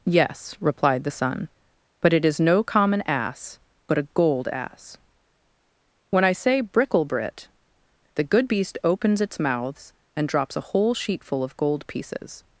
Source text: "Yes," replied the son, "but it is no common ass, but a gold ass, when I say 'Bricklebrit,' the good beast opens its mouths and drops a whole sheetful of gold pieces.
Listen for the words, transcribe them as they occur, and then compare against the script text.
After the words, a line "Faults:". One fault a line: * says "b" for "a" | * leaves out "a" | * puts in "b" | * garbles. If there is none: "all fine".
"Yes," replied the son, "but it is no common ass, but a gold ass, when I say 'Bricklebrit,' the good beast opens its mouths and drops a whole sheetful of gold pieces.
Faults:
all fine